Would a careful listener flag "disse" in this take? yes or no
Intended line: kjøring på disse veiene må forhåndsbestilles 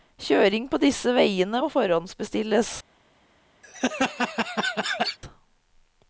no